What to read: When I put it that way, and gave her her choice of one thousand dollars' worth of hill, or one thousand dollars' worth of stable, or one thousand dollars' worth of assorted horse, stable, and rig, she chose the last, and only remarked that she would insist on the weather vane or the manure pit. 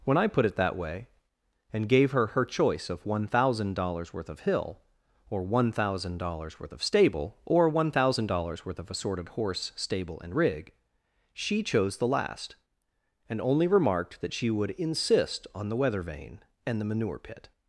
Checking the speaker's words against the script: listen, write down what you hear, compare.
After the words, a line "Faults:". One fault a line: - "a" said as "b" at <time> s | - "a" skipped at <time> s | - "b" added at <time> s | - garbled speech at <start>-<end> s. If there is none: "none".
When I put it that way, and gave her her choice of one thousand dollars' worth of hill, or one thousand dollars' worth of stable, or one thousand dollars' worth of assorted horse, stable, and rig, she chose the last, and only remarked that she would insist on the weather vane and the manure pit.
Faults:
- "or" said as "and" at 16.7 s